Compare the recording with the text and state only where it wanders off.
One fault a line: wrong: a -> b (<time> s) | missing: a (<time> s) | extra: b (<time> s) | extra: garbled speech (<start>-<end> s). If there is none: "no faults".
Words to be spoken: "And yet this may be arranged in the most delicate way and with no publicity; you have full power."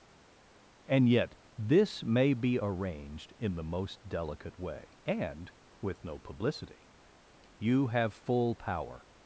no faults